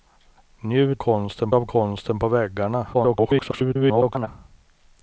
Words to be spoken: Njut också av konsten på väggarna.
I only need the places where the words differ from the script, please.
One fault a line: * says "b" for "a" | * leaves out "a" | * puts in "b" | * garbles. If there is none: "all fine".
* says "konsten" for "också"
* garbles